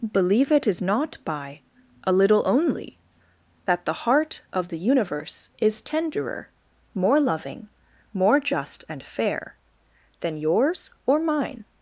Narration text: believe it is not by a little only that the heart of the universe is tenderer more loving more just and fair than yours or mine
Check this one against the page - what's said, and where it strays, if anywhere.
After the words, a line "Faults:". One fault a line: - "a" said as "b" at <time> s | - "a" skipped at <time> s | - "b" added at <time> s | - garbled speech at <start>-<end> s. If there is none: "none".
believe it is not by a little only that the heart of the universe is tenderer more loving more just and fair than yours or mine
Faults:
none